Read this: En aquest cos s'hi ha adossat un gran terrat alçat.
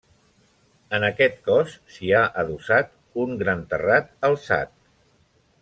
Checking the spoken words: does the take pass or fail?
pass